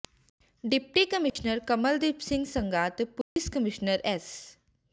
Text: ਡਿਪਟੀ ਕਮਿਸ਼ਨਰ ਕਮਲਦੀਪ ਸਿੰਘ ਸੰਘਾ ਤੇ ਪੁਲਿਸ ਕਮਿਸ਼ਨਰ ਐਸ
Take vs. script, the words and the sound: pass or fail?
fail